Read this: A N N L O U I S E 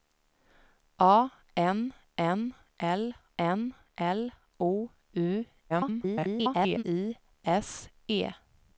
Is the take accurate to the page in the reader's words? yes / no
no